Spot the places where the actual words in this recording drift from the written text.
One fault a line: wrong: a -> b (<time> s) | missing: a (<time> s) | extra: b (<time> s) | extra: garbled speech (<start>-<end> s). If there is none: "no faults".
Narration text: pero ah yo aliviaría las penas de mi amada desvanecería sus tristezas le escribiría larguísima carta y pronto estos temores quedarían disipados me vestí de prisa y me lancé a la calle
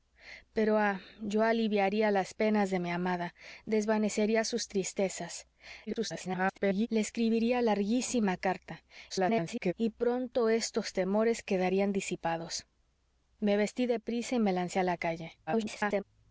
extra: garbled speech (5.9-6.9 s)
extra: garbled speech (9.1-9.7 s)
extra: garbled speech (15.5-16.0 s)